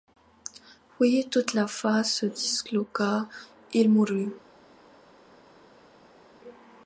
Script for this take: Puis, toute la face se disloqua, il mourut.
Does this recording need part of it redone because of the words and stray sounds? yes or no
no